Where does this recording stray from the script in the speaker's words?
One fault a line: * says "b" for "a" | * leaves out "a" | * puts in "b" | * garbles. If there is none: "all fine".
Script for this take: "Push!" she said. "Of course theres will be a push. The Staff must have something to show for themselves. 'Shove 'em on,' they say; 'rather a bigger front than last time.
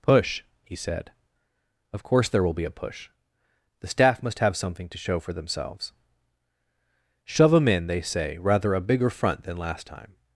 * says "he" for "she"
* says "there" for "theres"
* says "in" for "on"